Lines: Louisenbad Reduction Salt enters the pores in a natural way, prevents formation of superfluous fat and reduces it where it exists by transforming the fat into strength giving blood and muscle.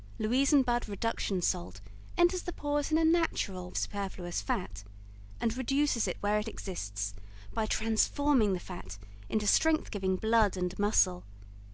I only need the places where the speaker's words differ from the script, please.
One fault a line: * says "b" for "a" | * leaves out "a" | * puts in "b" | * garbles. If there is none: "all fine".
* leaves out "way prevents formation"